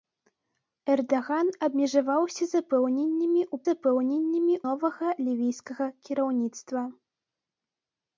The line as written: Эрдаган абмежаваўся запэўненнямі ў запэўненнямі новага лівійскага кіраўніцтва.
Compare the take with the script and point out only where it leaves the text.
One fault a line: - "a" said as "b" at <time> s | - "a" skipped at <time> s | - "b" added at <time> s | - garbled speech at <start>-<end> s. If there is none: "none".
none